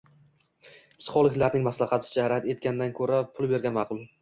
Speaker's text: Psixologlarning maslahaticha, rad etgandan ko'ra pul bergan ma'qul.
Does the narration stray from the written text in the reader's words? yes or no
no